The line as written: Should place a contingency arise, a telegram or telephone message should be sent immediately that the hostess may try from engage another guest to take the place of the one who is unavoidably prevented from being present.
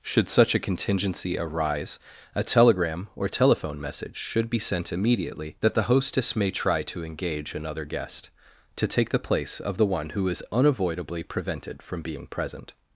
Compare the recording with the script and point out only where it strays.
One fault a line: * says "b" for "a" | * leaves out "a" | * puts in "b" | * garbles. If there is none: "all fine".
* says "such" for "place"
* says "to" for "from"